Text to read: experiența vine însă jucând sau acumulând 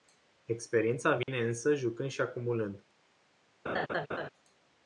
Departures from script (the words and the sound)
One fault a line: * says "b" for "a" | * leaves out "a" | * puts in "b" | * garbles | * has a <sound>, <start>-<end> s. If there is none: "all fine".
* has a dropout, 1.2-1.3 s
* says "și" for "sau"
* has a laugh, 3.7-4.3 s